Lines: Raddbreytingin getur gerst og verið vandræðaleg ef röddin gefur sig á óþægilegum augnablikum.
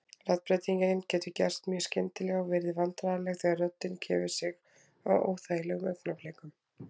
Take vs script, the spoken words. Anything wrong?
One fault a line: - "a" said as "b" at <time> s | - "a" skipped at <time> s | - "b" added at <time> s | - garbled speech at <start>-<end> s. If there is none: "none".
- "mjög skyndilega" added at 1.7 s
- "ef" said as "þegar" at 3.4 s